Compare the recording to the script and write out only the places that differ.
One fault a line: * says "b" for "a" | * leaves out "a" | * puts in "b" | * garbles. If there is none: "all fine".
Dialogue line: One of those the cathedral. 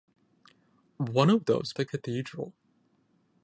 all fine